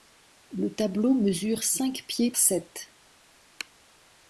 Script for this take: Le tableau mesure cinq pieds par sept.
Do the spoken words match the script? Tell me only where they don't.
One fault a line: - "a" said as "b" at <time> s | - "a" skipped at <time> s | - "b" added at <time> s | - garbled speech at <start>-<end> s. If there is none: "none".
- "par" skipped at 2.3 s